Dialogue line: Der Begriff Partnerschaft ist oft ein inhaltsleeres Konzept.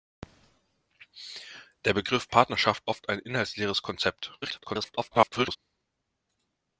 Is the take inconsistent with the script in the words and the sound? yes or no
yes